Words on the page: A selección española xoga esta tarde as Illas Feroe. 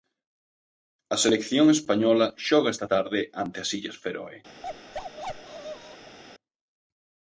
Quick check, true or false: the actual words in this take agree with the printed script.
false